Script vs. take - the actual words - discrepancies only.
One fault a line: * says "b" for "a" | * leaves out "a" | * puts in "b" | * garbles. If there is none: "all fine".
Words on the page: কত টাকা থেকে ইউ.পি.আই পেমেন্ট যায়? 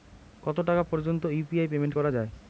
* says "পর্যন্ত" for "থেকে"
* puts in "করা"